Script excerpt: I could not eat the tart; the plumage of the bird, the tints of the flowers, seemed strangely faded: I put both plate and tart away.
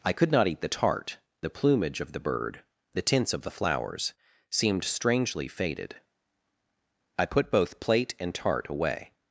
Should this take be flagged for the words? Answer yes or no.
no